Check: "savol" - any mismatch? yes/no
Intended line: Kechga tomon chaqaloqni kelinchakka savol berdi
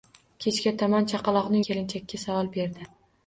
no